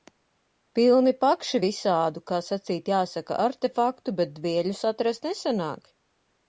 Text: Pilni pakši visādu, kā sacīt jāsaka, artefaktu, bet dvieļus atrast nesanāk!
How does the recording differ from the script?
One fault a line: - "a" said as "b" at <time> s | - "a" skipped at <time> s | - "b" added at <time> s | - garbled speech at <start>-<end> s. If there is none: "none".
none